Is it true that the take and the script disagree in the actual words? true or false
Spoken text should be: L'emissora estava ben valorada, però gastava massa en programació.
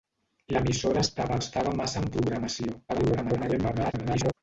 true